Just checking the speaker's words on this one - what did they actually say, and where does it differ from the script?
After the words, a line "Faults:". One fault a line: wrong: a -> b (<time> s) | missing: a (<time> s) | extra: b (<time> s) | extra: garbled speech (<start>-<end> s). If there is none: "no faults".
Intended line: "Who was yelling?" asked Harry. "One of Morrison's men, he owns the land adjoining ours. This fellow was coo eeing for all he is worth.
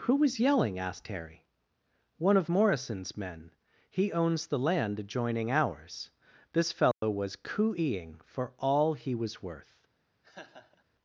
"Who was yelling?" asked Harry. "One of Morrison's men, he owns the land adjoining ours. This fellow was coo eeing for all he was worth.
Faults:
wrong: is -> was (9.1 s)